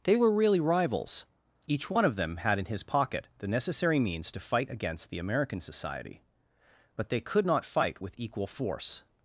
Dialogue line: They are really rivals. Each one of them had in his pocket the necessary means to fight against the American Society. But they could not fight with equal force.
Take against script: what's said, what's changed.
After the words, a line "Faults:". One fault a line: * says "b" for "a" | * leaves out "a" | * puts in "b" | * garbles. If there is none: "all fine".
They were really rivals. Each one of them had in his pocket the necessary means to fight against the American Society. But they could not fight with equal force.
Faults:
* says "were" for "are"